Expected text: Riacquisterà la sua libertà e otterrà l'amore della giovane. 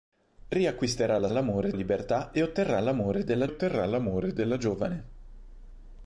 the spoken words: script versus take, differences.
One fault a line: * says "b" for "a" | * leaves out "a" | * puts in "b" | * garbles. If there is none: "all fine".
* says "l'amore" for "sua"
* puts in "otterrà l'amore della"